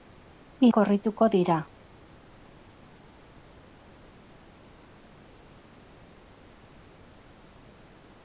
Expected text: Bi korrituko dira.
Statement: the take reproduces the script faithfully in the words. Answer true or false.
true